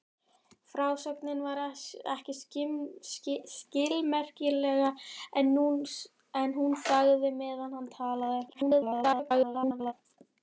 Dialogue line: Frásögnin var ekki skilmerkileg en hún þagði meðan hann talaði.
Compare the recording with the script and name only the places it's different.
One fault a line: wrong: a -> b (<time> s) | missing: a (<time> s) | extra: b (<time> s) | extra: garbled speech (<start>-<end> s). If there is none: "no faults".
extra: garbled speech (8.5-9.9 s)